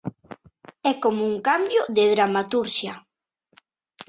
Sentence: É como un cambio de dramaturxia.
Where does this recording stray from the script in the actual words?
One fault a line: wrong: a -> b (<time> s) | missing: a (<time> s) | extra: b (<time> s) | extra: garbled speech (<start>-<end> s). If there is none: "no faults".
no faults